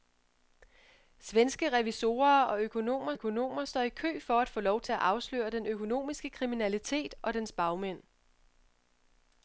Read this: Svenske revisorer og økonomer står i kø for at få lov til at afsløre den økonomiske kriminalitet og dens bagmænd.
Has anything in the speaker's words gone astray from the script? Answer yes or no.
yes